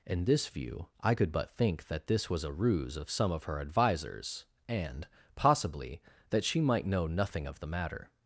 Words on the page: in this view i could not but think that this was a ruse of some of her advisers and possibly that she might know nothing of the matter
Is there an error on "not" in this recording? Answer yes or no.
yes